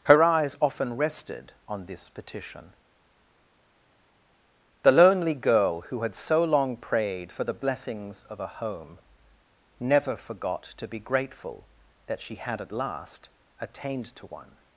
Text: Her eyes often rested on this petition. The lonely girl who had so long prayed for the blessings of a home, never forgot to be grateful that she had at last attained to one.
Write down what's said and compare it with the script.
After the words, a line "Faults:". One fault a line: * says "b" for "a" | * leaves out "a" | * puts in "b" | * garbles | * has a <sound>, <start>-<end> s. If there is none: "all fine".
Her eyes often rested on this petition. The lonely girl who had so long prayed for the blessings of a home, never forgot to be grateful that she had at last attained to one.
Faults:
all fine